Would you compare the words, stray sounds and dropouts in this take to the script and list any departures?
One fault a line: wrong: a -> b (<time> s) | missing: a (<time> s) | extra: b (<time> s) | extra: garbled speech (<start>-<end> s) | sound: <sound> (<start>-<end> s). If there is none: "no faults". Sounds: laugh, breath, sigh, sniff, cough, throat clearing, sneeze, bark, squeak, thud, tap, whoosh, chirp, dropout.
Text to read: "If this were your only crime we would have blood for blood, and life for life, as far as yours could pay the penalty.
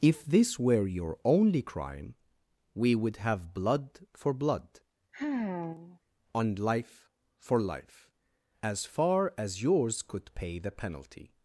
sound: sigh (5.1-6.0 s)